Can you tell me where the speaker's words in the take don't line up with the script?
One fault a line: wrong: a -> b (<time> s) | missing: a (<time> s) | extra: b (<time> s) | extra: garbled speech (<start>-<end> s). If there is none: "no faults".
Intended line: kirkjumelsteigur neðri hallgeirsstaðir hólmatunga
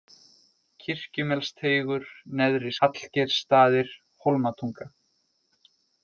no faults